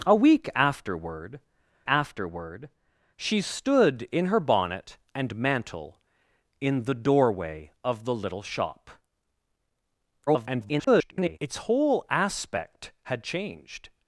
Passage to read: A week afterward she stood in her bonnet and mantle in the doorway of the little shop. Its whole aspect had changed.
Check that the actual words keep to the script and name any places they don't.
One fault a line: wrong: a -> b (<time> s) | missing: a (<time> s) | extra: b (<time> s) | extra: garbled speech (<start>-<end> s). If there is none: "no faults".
extra: afterward (1.9 s)
extra: garbled speech (10.3-11.4 s)